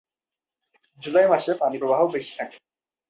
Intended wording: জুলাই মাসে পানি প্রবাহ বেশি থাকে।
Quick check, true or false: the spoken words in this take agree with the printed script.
true